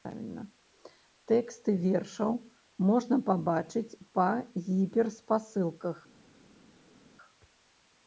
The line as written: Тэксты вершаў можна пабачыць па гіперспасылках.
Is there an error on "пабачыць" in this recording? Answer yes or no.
no